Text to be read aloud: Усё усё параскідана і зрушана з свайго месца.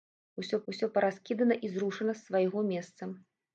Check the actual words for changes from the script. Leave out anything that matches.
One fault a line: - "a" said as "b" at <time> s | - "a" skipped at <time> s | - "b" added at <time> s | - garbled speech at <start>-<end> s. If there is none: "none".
none